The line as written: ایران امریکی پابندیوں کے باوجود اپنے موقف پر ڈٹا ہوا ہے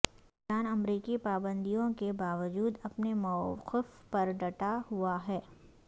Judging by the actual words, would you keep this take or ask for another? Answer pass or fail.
pass